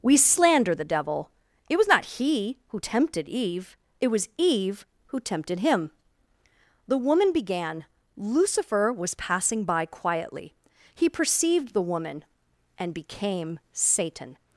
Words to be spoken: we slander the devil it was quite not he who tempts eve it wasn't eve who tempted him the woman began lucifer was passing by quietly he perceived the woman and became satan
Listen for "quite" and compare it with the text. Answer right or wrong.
wrong